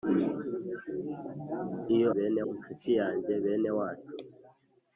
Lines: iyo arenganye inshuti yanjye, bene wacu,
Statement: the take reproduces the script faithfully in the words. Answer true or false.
false